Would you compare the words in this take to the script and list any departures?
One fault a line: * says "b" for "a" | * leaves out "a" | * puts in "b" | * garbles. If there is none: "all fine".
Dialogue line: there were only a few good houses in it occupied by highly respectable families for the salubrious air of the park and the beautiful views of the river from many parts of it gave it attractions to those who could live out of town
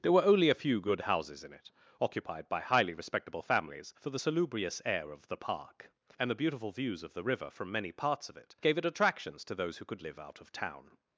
all fine